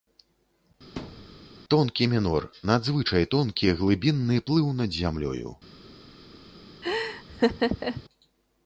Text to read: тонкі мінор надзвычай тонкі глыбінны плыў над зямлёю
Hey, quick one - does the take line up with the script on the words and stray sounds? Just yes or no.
no